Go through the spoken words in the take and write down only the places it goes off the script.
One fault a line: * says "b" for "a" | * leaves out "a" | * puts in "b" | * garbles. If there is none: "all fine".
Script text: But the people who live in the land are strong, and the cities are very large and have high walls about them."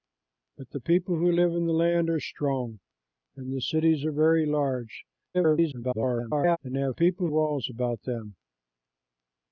* garbles
* says "people" for "high"